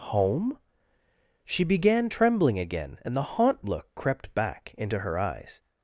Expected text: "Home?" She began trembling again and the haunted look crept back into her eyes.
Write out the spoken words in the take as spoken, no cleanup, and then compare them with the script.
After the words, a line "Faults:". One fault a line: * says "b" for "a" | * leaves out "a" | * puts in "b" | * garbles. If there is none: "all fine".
"Home?" She began trembling again and the haunt look crept back into her eyes.
Faults:
* says "haunt" for "haunted"